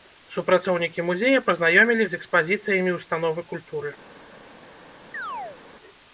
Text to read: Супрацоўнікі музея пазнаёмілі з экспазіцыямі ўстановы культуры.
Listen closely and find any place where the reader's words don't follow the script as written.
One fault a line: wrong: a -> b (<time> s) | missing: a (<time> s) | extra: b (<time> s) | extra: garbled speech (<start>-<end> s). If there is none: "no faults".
no faults